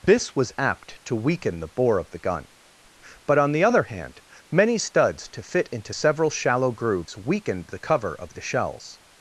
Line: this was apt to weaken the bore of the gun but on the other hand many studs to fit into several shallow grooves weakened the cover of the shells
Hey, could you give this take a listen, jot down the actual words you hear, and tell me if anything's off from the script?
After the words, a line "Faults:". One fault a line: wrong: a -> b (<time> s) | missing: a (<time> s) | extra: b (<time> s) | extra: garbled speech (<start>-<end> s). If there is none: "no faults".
this was apt to weaken the bore of the gun but on the other hand many studs to fit into several shallow grooves weakened the cover of the shells
Faults:
no faults